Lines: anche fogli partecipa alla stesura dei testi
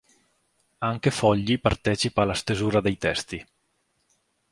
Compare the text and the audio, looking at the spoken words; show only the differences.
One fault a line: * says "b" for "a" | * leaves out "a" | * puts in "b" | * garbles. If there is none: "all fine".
all fine